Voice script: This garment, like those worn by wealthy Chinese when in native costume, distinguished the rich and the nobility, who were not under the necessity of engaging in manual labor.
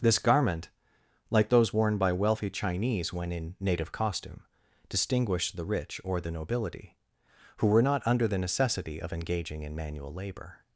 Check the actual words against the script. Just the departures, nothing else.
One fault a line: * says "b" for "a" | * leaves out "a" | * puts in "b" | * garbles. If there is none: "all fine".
* says "or" for "and"